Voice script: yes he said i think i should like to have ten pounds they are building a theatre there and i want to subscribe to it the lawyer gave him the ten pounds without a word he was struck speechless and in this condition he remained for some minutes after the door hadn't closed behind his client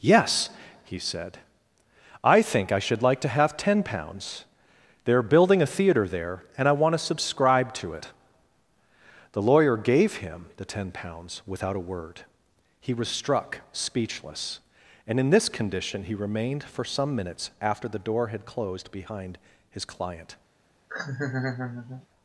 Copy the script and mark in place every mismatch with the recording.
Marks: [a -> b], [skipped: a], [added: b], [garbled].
yes he said i think i should like to have ten pounds they are building a theatre there and i want to subscribe to it the lawyer gave him the ten pounds without a word he was struck speechless and in this condition he remained for some minutes after the door [hadn't -> had] closed behind his client